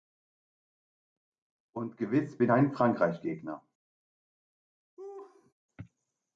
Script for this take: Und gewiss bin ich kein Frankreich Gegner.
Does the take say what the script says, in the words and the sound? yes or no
no